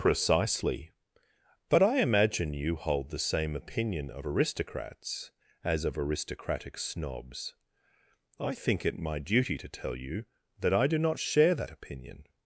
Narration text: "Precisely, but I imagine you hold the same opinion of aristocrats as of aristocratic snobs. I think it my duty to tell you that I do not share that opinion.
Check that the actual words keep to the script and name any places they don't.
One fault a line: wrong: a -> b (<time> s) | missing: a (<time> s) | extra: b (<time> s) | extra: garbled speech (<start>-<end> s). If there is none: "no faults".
no faults